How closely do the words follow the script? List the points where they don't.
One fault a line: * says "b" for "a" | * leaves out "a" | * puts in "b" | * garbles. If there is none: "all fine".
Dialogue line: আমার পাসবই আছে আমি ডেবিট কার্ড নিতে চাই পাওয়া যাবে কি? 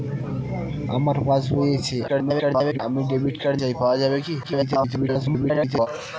* garbles
* leaves out "নিতে"
* garbles